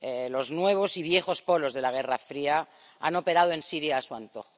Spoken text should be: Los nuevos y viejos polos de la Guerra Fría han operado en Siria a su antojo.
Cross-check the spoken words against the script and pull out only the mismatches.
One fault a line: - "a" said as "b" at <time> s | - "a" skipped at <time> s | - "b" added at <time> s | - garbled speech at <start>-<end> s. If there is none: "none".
none